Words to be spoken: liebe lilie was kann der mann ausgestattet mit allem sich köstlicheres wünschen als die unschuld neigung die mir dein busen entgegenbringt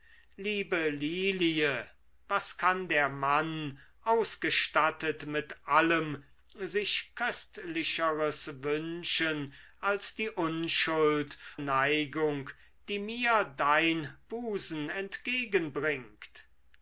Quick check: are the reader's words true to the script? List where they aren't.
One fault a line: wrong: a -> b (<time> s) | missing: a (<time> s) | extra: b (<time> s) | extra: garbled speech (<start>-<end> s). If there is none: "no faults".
no faults